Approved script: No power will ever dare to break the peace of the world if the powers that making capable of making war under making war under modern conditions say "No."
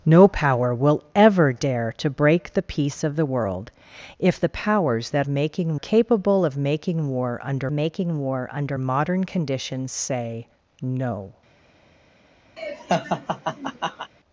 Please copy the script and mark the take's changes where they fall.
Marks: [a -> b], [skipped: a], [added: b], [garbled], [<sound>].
No power will ever dare to break the peace of the world if the powers that making capable of making war under making war under modern conditions say "No." [laugh]